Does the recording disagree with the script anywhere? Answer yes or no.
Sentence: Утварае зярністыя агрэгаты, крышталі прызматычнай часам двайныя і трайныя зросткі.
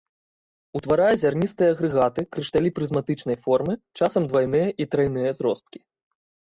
yes